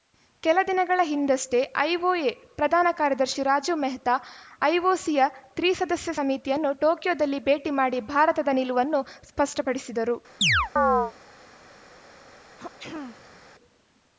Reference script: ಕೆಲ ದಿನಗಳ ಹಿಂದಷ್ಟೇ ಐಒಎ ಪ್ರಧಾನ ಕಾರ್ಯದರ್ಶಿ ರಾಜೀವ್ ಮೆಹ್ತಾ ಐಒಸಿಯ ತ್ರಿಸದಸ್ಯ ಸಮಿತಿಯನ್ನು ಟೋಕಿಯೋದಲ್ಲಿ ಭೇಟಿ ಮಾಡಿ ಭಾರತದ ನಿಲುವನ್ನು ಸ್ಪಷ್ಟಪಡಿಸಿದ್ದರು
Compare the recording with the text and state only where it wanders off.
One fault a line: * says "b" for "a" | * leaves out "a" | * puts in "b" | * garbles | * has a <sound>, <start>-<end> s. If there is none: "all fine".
* has a chirp, 10.4-11.1 s
* has a throat clearing, 12.6-13.5 s